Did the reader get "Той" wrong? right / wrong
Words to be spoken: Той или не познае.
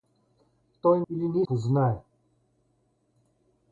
right